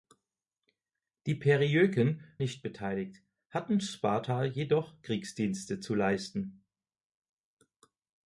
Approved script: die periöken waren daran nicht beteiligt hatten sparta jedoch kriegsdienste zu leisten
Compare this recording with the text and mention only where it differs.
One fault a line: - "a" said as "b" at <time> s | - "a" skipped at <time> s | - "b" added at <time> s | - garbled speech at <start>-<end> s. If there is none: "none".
- "waren daran" skipped at 2.4 s